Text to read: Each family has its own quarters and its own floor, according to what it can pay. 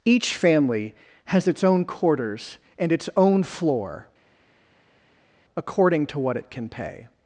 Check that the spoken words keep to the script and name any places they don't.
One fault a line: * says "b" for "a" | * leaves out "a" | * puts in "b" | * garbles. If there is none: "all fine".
all fine